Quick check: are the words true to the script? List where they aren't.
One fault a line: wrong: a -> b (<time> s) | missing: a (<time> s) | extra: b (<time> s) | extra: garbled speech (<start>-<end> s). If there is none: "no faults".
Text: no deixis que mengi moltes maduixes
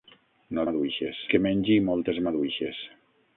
wrong: deixis -> maduixes (0.7 s)